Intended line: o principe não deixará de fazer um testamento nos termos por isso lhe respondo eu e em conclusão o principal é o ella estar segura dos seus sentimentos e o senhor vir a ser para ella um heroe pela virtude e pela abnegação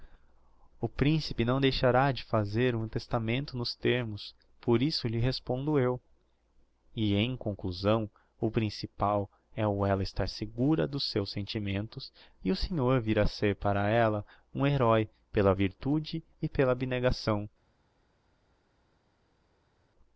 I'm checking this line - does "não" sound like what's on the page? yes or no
yes